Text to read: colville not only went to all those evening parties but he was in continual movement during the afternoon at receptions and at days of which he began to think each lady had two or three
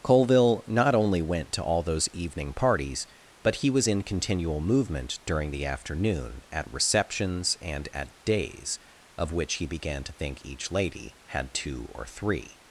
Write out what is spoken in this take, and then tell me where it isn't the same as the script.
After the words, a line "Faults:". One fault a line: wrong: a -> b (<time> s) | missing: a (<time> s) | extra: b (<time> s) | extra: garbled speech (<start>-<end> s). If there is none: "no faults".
colville not only went to all those evening parties but he was in continual movement during the afternoon at receptions and at days of which he began to think each lady had two or three
Faults:
no faults